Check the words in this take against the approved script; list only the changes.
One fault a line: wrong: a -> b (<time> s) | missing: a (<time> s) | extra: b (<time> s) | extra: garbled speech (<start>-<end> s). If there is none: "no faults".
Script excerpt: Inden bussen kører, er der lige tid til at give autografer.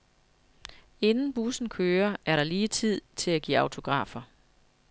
no faults